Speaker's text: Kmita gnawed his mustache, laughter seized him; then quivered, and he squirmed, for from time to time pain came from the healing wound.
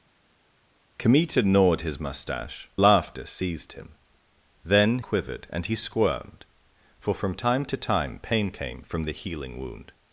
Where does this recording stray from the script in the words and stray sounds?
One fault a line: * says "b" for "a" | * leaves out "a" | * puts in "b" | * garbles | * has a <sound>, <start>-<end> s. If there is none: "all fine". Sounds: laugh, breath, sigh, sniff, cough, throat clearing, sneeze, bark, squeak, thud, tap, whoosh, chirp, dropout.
all fine